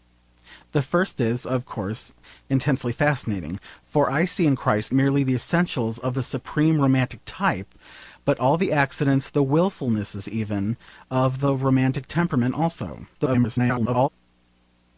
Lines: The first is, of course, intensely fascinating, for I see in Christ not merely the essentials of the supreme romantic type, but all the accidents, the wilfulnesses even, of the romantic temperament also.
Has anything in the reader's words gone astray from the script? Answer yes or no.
yes